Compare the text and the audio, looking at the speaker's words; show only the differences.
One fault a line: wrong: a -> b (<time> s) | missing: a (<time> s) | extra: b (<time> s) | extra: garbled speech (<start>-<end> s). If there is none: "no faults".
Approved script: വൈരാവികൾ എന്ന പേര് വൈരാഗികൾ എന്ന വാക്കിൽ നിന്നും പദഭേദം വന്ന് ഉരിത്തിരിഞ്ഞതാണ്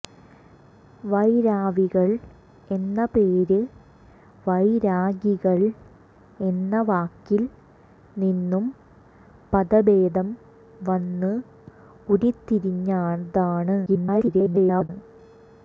extra: garbled speech (13.9-14.9 s)